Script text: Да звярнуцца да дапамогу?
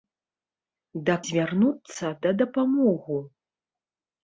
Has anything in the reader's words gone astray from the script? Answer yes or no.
no